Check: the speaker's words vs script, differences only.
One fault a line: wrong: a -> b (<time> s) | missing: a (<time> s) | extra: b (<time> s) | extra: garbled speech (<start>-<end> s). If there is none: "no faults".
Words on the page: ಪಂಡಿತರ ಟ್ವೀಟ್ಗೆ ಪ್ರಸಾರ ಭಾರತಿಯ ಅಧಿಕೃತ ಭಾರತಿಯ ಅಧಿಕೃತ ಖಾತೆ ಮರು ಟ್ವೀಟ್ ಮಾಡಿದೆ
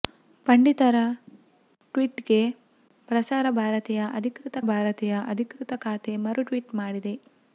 no faults